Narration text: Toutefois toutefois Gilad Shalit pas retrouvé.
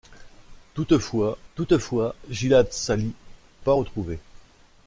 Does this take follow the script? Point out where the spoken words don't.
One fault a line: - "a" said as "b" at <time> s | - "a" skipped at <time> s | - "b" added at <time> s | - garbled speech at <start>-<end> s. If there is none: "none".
none